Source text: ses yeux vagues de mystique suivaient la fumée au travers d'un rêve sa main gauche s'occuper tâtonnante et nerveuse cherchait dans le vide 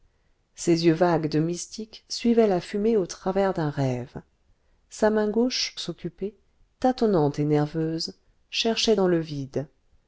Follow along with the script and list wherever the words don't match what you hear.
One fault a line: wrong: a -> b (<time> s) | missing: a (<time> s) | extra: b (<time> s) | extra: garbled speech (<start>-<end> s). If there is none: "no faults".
no faults